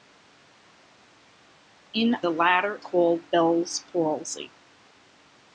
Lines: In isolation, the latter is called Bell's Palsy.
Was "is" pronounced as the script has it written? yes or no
no